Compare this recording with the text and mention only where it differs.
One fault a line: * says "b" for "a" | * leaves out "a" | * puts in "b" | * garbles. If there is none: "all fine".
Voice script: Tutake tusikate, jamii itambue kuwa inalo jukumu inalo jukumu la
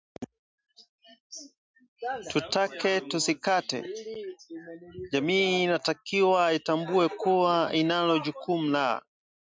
* puts in "inatakiwa"
* leaves out "inalo jukumu"